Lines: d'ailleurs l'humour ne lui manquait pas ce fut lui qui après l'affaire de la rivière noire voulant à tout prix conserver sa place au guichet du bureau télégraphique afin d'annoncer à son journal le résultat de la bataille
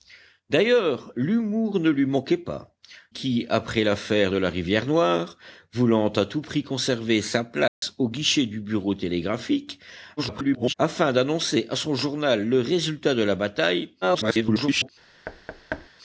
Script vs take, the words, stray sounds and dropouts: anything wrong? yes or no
yes